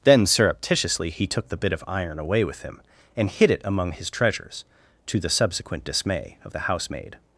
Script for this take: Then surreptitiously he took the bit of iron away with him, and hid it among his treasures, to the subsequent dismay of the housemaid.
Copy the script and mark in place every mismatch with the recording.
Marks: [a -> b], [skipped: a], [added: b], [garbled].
Then surreptitiously he took the bit of iron away with him, and hid it among his treasures, to the subsequent dismay of the housemaid.